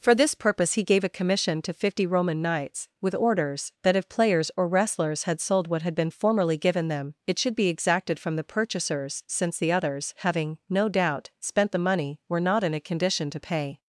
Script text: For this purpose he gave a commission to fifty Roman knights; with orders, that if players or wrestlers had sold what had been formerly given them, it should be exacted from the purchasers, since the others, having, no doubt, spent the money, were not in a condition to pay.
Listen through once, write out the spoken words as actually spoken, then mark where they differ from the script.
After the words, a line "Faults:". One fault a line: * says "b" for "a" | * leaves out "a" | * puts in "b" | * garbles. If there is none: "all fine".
For this purpose he gave a commission to fifty Roman knights; with orders, that if players or wrestlers had sold what had been formerly given them, it should be exacted from the purchasers, since the others, having, no doubt, spent the money, were not in a condition to pay.
Faults:
all fine